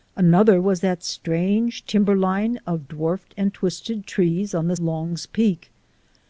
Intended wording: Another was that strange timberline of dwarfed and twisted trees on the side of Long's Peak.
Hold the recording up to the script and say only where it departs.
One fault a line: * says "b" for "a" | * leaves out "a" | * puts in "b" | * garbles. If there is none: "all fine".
* leaves out "side of"